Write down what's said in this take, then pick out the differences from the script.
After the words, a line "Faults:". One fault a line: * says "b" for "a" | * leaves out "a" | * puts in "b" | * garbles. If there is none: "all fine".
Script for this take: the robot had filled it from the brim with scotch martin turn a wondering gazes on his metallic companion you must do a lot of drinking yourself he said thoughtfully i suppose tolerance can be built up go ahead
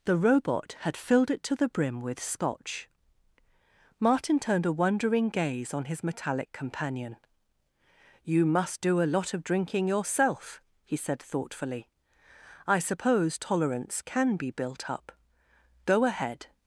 the robot had filled it to the brim with scotch martin turned a wondering gaze on his metallic companion you must do a lot of drinking yourself he said thoughtfully i suppose tolerance can be built up go ahead
Faults:
* says "to" for "from"
* says "turned" for "turn"
* says "gaze" for "gazes"